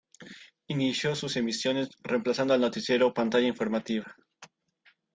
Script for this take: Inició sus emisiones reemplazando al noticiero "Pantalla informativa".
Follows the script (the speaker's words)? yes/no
yes